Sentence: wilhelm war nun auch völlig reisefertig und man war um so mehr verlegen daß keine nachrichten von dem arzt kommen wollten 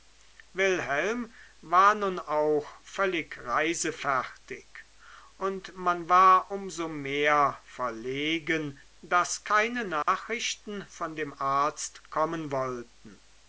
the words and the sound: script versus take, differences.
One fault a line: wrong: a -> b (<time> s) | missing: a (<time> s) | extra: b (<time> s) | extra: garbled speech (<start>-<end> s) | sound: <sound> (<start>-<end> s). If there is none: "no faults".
sound: dropout (10.0-10.1 s)